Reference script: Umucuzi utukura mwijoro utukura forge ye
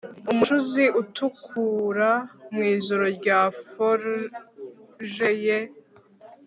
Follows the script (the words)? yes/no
no